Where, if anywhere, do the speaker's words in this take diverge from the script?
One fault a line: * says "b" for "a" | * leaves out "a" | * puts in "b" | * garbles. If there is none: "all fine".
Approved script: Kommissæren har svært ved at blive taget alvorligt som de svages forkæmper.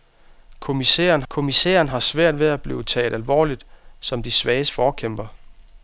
* puts in "kommissæren"